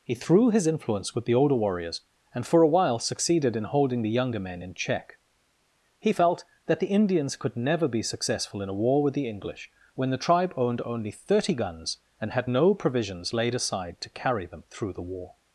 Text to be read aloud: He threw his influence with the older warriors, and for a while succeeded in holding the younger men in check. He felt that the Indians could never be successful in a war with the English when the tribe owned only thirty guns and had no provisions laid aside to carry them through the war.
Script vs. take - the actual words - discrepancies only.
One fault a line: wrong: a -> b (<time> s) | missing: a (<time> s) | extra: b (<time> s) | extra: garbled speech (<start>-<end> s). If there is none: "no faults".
no faults